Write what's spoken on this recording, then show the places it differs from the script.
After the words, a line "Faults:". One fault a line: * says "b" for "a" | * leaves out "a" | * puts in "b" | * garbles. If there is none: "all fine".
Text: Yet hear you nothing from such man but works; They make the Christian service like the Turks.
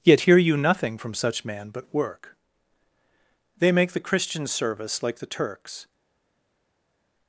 Yet hear you nothing from such man but work; They make the Christian service like the Turks.
Faults:
* says "work" for "works"